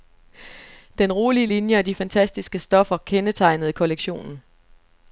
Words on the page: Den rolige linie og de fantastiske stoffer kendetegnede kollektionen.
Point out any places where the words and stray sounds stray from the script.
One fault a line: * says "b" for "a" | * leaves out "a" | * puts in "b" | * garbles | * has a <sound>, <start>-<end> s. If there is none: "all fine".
all fine